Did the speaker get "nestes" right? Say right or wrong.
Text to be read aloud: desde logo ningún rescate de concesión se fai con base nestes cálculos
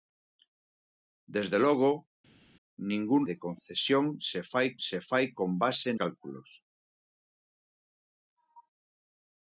wrong